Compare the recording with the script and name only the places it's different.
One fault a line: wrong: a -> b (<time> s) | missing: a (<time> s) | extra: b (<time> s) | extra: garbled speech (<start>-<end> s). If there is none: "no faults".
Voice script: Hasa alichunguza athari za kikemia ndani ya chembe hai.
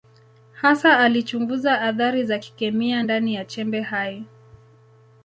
no faults